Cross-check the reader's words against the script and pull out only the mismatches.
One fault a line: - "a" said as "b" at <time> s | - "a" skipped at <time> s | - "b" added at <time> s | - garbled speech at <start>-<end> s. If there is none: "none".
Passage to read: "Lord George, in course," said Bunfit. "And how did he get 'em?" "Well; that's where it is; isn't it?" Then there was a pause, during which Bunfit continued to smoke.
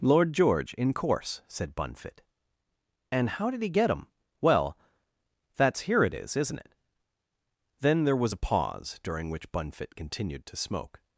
- "where" said as "here" at 5.8 s